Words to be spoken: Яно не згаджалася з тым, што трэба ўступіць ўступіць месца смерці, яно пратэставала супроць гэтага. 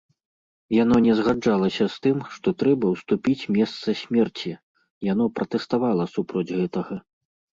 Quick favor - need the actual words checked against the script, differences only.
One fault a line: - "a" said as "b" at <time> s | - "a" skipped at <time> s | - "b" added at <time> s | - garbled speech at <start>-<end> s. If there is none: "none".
- "ўступіць" skipped at 3.5 s